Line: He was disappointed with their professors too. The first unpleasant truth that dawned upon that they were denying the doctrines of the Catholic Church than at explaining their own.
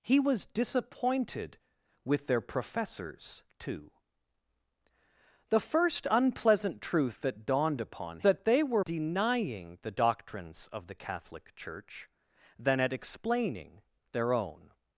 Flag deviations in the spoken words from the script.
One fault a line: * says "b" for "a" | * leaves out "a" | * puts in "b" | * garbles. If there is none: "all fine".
all fine